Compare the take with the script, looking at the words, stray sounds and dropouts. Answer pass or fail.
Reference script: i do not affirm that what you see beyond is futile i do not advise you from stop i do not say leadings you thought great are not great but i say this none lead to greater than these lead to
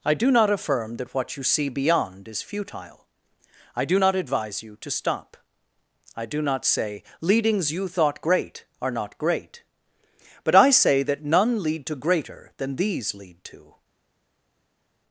fail